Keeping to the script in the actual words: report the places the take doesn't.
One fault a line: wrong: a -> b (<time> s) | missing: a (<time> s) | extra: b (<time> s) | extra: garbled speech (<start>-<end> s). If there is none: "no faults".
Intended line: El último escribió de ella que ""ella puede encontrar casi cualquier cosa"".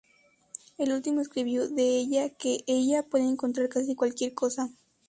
no faults